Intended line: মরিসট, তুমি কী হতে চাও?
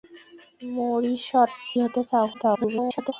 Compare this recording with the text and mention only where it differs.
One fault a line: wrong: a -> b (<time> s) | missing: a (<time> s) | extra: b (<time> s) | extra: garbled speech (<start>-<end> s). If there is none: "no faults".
missing: তুমি কী (1.5 s)
extra: garbled speech (2.3-3.1 s)